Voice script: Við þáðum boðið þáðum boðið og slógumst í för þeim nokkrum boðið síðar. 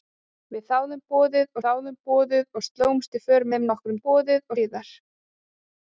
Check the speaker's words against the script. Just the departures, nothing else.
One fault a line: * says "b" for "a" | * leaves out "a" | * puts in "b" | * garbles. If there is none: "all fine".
all fine